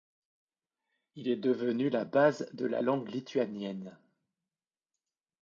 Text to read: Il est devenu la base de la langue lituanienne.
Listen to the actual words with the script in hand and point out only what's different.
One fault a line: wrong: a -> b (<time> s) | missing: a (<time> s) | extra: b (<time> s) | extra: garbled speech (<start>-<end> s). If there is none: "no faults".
no faults